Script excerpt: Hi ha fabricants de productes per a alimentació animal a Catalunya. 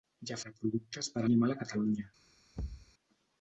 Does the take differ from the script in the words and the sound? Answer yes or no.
yes